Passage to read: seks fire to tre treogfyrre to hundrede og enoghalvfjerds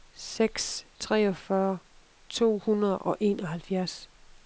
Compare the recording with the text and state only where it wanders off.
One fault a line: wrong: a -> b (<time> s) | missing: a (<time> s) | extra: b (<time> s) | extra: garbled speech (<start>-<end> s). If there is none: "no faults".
missing: fire to tre (0.8 s)